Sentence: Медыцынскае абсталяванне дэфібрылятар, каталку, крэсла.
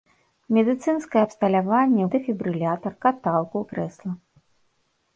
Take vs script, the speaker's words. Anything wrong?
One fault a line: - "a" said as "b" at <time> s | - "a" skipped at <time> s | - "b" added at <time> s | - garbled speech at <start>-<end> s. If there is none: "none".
none